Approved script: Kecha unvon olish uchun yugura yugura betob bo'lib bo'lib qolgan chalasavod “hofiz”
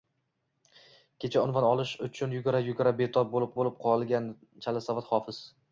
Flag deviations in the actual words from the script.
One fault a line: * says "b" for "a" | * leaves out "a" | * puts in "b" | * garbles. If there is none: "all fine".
all fine